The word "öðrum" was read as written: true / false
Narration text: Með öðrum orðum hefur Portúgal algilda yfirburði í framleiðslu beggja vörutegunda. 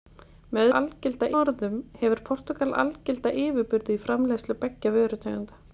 false